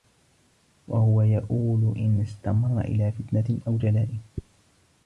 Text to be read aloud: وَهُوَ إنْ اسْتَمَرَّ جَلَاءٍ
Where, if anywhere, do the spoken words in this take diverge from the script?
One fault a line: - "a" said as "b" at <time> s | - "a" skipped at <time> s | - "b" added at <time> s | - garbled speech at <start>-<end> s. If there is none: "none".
- "يَئُولُ" added at 1.2 s
- "إلَى فِتْنَةٍ أَوْ" added at 2.8 s